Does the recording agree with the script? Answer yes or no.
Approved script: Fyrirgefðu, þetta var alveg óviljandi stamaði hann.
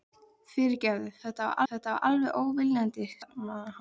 no